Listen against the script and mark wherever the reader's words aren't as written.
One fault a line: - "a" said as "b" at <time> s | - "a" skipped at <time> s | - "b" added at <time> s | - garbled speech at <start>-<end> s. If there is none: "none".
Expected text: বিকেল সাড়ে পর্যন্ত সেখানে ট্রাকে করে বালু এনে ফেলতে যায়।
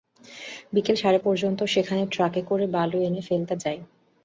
none